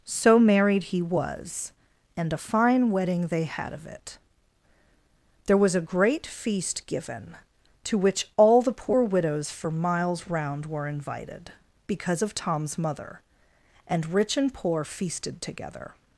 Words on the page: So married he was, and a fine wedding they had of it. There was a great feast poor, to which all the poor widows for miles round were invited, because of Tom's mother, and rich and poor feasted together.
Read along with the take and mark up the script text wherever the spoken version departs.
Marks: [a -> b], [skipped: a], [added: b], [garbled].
So married he was, and a fine wedding they had of it. There was a great feast [poor, -> given] to which all the poor widows for miles round were invited, because of Tom's mother, and rich and poor feasted together.